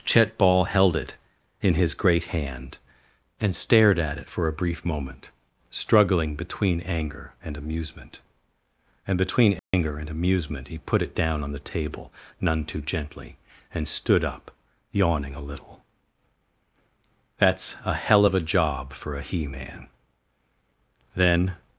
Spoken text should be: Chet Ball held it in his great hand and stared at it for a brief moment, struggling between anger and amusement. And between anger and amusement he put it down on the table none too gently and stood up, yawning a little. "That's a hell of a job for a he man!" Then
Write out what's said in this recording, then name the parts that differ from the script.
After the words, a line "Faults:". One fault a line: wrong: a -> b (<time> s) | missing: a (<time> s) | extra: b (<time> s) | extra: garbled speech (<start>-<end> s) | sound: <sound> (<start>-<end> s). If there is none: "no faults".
Chet Ball held it in his great hand and stared at it for a brief moment, struggling between anger and amusement. And between anger and amusement he put it down on the table none too gently and stood up, yawning a little. "That's a hell of a job for a he man!" Then
Faults:
sound: dropout (9.6-9.7 s)